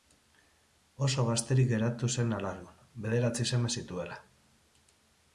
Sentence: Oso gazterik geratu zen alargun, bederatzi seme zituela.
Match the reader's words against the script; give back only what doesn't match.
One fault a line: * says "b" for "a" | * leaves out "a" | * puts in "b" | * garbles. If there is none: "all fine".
all fine